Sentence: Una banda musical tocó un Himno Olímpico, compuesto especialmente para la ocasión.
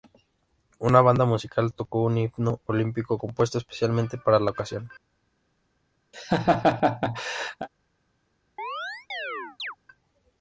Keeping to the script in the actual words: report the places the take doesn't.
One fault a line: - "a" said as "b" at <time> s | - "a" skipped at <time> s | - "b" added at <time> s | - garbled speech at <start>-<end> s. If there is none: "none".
none